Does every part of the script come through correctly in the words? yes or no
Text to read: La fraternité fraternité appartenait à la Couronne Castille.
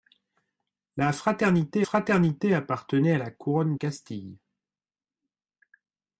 yes